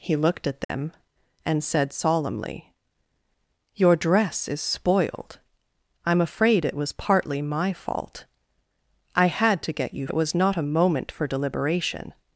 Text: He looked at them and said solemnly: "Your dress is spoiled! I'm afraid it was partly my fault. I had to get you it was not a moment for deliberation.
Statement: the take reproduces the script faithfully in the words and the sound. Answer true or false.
false